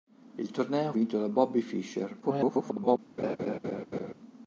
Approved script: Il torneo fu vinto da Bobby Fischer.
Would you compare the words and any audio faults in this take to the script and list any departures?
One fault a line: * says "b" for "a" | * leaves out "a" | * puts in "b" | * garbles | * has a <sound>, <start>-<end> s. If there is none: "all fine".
* leaves out "fu"
* garbles
* has a laugh, 3.2-4.1 s